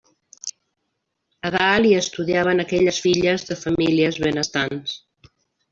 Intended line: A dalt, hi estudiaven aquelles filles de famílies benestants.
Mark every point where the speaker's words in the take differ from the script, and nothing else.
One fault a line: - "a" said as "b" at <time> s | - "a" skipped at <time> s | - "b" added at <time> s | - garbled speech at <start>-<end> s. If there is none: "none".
none